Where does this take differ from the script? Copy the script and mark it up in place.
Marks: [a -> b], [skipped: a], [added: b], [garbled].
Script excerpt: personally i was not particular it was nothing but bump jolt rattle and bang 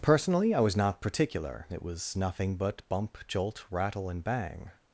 personally i was not particular it was nothing but bump jolt rattle and bang